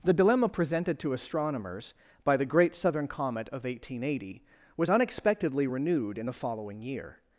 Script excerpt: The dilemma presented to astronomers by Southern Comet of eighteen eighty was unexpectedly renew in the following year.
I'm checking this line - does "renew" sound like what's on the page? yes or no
no